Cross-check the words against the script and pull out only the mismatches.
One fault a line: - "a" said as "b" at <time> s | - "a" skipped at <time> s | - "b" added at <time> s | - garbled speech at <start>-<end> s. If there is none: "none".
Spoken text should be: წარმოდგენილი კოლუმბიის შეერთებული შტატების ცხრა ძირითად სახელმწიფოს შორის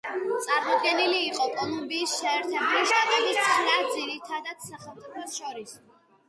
- "იყო" added at 1.2 s